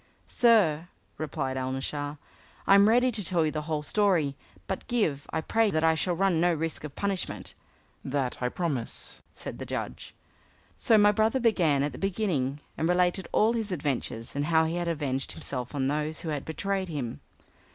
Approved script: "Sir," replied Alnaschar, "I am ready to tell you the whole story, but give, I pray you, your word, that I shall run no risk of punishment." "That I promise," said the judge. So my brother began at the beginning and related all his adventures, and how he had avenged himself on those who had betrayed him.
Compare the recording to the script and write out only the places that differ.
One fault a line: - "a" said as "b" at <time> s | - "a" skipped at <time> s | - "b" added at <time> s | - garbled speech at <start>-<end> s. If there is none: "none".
- "you your word" skipped at 5.7 s